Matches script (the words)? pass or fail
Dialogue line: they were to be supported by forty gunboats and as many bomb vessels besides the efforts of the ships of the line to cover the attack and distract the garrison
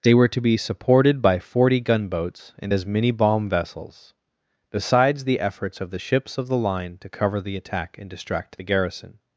pass